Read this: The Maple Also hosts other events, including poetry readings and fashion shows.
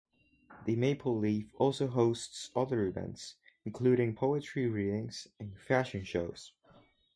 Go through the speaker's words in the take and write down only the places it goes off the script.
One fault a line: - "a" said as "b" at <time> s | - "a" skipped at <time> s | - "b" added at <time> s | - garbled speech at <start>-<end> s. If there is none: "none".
- "Leaf" added at 1.1 s